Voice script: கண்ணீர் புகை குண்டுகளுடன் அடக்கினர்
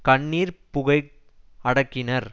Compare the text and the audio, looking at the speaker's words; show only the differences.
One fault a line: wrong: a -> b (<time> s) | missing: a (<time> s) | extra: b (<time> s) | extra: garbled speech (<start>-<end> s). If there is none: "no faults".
missing: குண்டுகளுடன் (1.0 s)